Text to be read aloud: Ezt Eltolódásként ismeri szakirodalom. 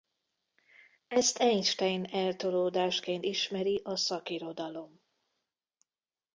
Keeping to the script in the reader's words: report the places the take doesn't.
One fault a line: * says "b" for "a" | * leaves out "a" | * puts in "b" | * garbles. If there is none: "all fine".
* puts in "Einstein"
* puts in "a"